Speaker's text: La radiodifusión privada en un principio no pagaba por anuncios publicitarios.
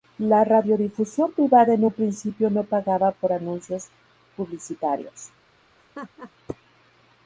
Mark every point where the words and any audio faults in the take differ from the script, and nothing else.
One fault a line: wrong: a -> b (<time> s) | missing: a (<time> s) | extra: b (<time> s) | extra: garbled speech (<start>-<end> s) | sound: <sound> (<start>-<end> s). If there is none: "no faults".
sound: laugh (5.8-6.3 s)